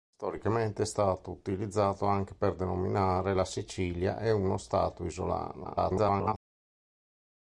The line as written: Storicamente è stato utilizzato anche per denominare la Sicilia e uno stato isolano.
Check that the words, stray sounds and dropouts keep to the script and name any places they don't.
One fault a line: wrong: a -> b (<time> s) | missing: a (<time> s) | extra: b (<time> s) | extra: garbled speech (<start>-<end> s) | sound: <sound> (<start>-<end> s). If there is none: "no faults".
extra: garbled speech (5.6-6.3 s)